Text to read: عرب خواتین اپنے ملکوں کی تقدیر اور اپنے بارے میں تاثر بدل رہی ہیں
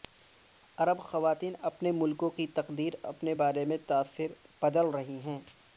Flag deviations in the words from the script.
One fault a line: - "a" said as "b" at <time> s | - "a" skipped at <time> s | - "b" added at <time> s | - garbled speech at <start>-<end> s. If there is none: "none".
- "اور" skipped at 2.9 s